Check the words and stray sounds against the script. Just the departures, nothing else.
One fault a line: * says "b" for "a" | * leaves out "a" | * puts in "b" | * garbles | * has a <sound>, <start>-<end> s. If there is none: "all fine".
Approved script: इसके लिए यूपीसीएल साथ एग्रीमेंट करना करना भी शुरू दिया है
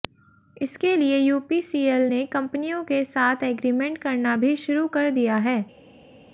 * puts in "ने कंपनियों के"
* leaves out "करना"
* puts in "कर"